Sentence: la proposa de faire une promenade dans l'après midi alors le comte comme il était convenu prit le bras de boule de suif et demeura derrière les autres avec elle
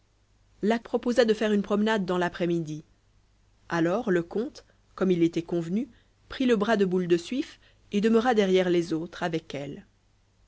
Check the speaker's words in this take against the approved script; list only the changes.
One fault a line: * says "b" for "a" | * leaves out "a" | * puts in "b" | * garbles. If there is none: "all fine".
all fine